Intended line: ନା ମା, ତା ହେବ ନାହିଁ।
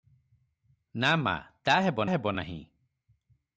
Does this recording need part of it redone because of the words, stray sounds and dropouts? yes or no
yes